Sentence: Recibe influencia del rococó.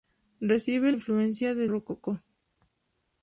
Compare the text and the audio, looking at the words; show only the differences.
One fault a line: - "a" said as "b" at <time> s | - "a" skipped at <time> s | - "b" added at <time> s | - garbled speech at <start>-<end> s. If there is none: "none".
none